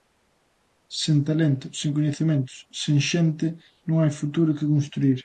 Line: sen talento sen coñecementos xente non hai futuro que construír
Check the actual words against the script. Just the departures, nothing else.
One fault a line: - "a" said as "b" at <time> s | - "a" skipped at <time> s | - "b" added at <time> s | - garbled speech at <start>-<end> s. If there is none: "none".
- "sen" added at 2.8 s